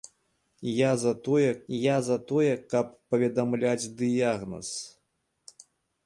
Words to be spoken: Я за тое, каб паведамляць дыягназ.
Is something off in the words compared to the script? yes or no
yes